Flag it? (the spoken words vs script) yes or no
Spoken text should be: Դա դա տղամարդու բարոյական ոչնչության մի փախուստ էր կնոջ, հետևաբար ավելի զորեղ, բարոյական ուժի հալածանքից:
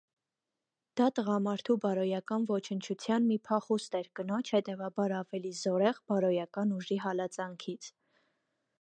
yes